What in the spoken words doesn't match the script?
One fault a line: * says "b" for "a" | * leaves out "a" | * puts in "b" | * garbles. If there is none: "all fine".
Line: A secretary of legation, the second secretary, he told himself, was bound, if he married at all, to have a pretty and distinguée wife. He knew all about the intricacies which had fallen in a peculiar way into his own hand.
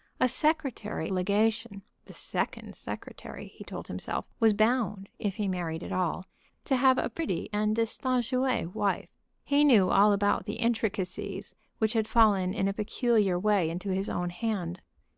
* leaves out "of"